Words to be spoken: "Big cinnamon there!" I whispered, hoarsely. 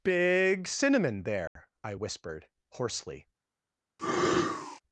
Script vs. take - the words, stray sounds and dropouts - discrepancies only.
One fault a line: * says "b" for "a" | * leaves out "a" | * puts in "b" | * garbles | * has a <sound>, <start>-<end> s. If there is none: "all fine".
* has a dropout, 1.5-1.6 s
* has a sneeze, 4.0-4.8 s